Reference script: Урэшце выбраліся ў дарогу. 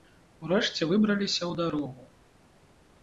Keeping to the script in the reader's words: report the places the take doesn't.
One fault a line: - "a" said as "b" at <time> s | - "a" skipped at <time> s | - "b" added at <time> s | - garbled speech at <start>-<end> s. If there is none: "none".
none